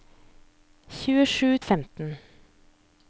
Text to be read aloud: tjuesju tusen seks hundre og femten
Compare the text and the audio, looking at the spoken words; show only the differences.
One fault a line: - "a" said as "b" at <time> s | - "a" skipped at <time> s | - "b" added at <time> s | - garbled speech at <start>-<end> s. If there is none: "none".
- "tusen seks hundre" skipped at 1.5 s